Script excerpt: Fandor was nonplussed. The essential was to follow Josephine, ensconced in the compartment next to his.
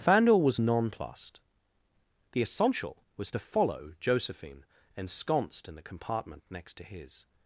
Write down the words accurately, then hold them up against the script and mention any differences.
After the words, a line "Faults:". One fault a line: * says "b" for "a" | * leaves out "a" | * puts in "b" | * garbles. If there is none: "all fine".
Fandor was nonplussed. The essential was to follow Josephine, ensconced in the compartment next to his.
Faults:
all fine